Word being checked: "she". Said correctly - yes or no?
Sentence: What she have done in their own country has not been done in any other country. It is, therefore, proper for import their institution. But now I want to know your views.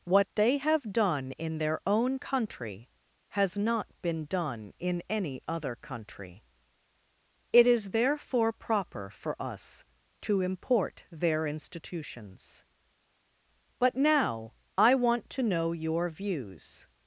no